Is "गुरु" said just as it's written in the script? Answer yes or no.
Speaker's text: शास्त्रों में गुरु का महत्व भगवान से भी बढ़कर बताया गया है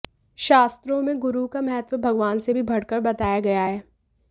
yes